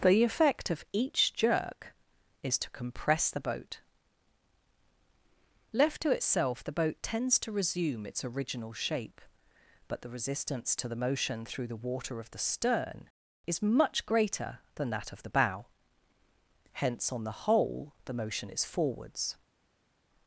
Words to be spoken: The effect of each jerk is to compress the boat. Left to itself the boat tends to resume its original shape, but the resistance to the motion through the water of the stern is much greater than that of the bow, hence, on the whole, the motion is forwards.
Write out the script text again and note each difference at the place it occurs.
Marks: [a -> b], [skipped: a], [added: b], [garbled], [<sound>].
The effect of each jerk is to compress the boat. Left to itself the boat tends to resume its original shape, but the resistance to the motion through the water of the stern is much greater than that of the bow, hence, on the whole, the motion is forwards.